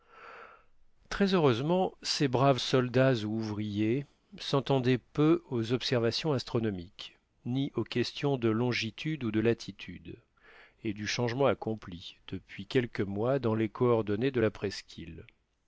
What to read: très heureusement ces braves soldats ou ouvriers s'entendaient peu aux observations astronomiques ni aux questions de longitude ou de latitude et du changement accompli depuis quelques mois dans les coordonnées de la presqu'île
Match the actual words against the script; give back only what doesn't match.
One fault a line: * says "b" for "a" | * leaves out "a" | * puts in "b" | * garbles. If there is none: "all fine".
all fine